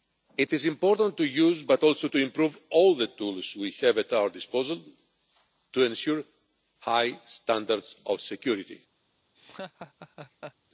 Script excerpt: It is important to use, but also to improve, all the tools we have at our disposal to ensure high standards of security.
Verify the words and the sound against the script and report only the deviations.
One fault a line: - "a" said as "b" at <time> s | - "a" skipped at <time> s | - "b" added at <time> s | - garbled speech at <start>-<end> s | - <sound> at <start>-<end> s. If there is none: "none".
- laugh at 9.3-10.5 s